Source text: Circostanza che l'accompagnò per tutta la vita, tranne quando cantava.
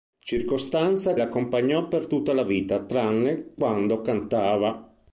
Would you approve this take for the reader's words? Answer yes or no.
no